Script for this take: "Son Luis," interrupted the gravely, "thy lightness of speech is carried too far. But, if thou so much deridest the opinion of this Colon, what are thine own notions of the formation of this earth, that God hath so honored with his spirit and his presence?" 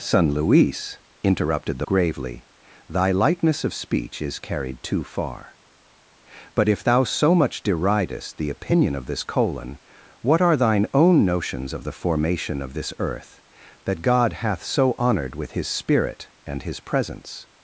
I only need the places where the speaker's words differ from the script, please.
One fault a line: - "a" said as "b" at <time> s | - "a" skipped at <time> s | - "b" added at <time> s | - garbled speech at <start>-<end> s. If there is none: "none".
none